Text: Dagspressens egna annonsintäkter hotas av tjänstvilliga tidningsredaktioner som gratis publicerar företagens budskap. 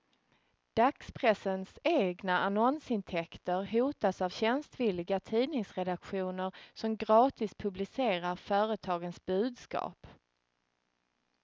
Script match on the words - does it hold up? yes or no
yes